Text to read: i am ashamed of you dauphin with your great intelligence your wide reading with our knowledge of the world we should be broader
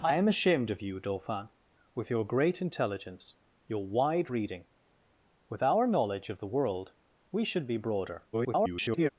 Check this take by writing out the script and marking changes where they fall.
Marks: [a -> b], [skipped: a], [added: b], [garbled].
i am ashamed of you dauphin with your great intelligence your wide reading with our knowledge of the world we should be broader [garbled]